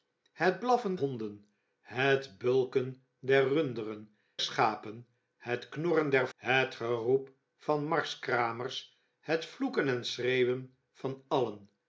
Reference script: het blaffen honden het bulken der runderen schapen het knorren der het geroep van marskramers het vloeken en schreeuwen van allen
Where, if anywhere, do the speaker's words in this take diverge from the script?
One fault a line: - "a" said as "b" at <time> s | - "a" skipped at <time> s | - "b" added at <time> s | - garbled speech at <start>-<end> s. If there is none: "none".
none